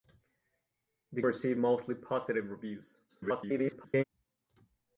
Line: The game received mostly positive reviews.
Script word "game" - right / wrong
wrong